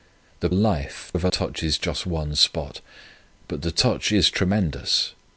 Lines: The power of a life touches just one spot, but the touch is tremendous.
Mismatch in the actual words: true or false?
true